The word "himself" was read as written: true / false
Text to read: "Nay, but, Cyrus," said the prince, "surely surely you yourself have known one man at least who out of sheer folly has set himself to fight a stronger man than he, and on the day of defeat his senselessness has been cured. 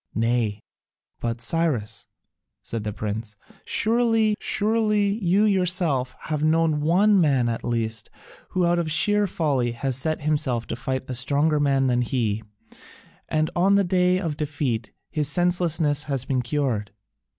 true